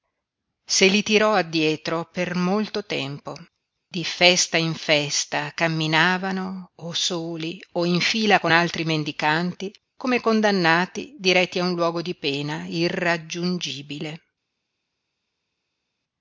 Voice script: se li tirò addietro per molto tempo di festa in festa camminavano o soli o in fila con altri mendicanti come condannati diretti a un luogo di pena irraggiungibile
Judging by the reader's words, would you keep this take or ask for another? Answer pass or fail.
pass